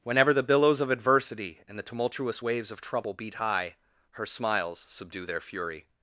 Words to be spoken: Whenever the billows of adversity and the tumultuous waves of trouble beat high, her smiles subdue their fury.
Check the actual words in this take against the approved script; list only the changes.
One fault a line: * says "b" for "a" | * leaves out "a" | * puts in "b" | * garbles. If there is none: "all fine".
all fine